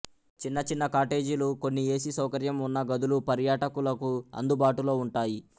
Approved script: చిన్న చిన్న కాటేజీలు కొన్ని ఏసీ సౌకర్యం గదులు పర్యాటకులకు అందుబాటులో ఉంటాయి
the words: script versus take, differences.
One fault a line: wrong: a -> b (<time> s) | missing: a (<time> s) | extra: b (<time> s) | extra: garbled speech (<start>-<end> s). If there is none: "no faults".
extra: ఉన్న (2.7 s)